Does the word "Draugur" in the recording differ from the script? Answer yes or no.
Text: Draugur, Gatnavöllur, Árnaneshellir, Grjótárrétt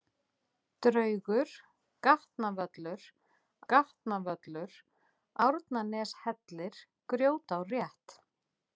no